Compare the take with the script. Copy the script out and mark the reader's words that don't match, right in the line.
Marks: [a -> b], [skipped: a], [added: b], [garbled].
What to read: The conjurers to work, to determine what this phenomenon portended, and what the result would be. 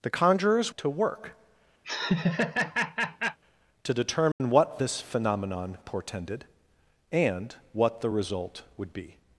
The conjurers to work, to determine what this phenomenon portended, and what the result would be.